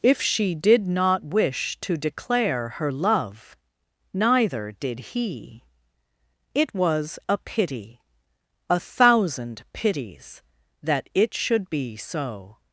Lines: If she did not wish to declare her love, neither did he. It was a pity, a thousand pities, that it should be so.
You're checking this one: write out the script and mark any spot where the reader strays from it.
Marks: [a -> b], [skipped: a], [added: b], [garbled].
If she did not wish to declare her love, neither did he. It was a pity, a thousand pities, that it should be so.